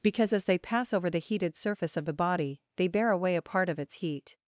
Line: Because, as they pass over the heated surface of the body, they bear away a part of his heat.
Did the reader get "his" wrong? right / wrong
wrong